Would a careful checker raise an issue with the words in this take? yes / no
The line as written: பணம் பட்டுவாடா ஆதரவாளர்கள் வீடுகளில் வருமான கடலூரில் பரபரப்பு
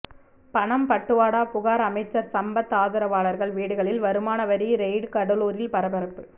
yes